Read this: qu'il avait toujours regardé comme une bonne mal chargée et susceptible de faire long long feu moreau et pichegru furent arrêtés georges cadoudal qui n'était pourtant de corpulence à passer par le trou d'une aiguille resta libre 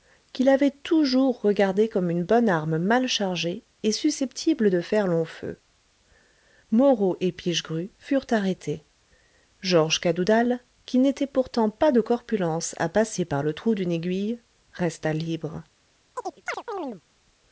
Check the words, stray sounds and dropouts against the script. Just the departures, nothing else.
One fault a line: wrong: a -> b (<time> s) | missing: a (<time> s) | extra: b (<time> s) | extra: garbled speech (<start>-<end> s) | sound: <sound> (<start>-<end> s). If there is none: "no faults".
extra: arme (2.5 s)
missing: long (5.2 s)
extra: pas (11.7 s)
sound: chirp (16.2-17.0 s)